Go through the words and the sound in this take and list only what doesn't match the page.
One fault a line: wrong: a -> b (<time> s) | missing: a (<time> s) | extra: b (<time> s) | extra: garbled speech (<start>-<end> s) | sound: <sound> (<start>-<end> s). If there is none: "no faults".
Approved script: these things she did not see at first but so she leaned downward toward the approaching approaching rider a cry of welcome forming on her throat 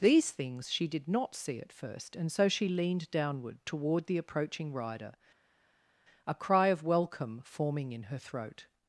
wrong: but -> and (2.1 s)
missing: approaching (4.7 s)
wrong: on -> in (7.9 s)